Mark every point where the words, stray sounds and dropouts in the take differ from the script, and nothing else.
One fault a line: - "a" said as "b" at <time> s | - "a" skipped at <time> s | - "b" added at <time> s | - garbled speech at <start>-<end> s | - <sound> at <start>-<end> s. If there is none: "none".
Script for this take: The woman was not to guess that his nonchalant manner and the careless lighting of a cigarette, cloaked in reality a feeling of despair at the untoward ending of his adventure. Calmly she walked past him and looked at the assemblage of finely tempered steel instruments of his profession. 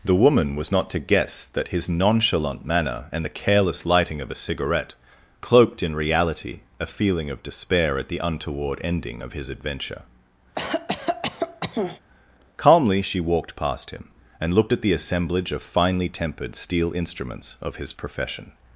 - cough at 10.5-12.0 s